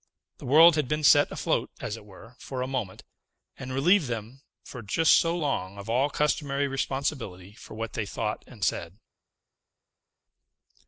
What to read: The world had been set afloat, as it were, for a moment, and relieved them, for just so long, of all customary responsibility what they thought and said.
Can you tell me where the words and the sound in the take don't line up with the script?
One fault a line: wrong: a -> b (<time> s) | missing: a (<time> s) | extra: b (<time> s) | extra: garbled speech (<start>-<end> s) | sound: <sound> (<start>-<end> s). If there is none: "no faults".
extra: for (7.5 s)